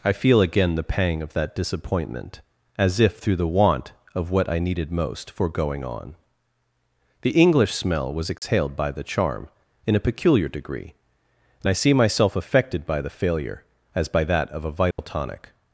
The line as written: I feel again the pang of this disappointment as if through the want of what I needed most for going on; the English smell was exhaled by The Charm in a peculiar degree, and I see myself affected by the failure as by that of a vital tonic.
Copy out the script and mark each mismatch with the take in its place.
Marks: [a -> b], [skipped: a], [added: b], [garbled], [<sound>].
I feel again the pang of [this -> that] disappointment as if through the want of what I needed most for going on; the English smell was exhaled [dropout] by The Charm in a peculiar degree, and I see myself affected by the failure as by that of a vital [dropout] tonic.